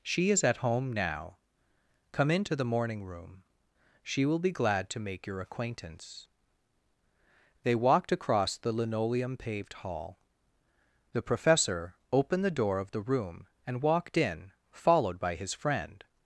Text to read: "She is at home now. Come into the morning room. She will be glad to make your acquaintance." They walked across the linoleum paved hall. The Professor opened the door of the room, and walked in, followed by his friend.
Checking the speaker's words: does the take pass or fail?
pass